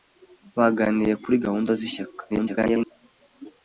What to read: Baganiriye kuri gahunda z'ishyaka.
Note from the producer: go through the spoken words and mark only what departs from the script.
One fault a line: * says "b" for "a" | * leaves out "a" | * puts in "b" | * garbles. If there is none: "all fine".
* garbles